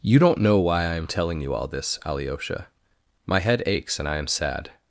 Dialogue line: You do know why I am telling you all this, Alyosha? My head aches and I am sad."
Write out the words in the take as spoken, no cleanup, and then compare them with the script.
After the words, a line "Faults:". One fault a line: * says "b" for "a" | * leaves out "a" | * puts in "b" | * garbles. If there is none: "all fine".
You don't know why I am telling you all this, Alyosha? My head aches and I am sad."
Faults:
* says "don't" for "do"